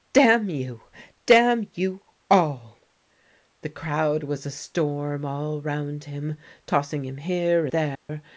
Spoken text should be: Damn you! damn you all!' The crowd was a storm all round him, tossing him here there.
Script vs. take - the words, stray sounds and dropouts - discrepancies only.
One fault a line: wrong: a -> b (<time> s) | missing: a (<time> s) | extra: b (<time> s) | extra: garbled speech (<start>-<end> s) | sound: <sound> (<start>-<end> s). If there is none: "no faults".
sound: dropout (8.0-8.1 s)